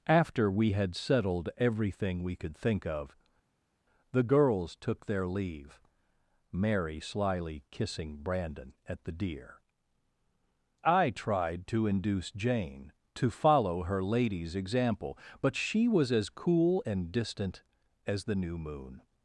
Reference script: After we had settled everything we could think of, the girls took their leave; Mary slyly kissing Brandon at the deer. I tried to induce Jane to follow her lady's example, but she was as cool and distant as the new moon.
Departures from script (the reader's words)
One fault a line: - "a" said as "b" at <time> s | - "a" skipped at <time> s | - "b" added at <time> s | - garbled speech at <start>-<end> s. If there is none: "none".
none